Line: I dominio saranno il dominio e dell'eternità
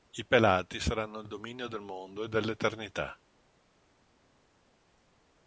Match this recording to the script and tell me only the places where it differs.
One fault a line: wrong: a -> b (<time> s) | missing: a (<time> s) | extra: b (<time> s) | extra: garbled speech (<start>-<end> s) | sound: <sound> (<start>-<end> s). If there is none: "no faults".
wrong: dominio -> pelati (0.2 s)
extra: del mondo (1.7 s)